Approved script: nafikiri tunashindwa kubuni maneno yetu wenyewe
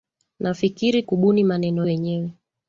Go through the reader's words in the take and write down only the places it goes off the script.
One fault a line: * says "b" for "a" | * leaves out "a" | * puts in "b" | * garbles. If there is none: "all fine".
* leaves out "tunashindwa"
* leaves out "yetu"